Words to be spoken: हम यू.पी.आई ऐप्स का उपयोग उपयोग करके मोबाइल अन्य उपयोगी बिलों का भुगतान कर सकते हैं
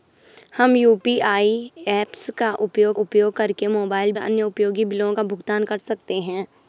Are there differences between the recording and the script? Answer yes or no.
no